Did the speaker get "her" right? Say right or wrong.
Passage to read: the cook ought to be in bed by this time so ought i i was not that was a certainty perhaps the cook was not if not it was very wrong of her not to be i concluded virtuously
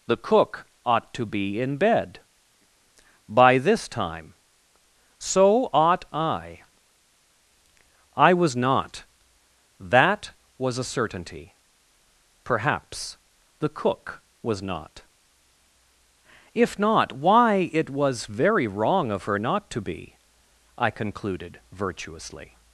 right